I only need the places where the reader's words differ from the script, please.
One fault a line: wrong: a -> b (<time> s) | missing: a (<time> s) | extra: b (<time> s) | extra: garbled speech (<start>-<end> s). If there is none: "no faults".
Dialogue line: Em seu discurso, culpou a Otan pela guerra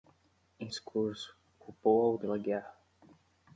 missing: seu (0.7 s)
missing: Otan (2.1 s)